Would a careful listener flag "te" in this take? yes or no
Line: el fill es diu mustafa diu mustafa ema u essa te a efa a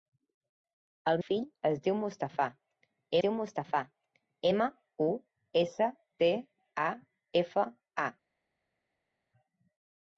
no